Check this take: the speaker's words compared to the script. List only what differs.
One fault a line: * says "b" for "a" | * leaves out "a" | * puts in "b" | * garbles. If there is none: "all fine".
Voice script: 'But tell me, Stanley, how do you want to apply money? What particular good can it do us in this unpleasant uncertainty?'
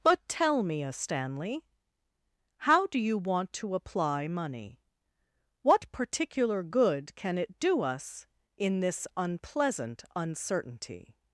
* puts in "a"